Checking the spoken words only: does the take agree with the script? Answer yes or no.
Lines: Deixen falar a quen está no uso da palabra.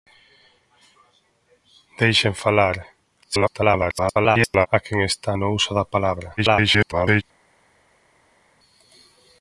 no